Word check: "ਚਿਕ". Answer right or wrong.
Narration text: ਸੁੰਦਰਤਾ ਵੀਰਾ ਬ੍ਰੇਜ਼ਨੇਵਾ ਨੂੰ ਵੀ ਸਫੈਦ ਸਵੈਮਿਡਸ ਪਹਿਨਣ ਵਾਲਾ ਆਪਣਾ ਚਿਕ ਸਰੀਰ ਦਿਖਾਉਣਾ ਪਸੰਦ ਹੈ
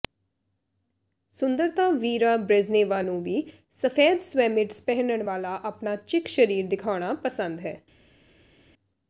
right